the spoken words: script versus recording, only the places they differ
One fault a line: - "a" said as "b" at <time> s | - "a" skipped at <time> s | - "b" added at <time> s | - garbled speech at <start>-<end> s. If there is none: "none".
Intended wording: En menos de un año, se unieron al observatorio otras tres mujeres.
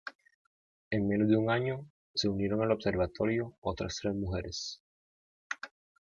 none